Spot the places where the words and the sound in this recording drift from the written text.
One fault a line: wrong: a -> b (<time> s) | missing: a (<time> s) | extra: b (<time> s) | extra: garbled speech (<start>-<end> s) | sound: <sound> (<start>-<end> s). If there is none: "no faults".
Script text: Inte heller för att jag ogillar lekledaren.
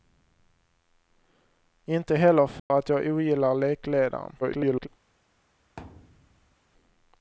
sound: dropout (2.6-2.7 s)
extra: garbled speech (4.4-4.9 s)
sound: thud (5.8-6.6 s)